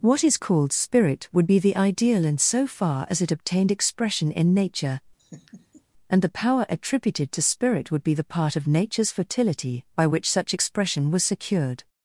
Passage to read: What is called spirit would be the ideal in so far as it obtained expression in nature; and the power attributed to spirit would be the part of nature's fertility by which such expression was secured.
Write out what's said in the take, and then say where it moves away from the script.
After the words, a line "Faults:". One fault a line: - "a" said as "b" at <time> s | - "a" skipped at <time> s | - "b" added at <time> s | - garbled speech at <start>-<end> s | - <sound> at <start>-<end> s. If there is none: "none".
What is called spirit would be the ideal in so far as it obtained expression in nature; and the power attributed to spirit would be the part of nature's fertility by which such expression was secured.
Faults:
- laugh at 5.2-5.8 s